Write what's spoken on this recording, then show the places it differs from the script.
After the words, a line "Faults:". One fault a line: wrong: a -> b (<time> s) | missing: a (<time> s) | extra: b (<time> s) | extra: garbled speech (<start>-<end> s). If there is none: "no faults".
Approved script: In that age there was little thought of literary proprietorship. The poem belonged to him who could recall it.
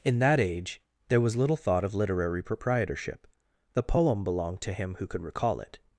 In that age there was little thought of literary proprietorship. The poem belonged to him who could recall it.
Faults:
no faults